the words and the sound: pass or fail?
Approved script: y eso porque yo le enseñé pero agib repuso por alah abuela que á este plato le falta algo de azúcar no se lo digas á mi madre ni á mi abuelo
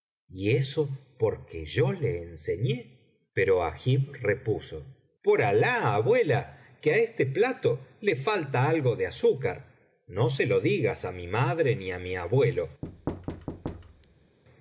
fail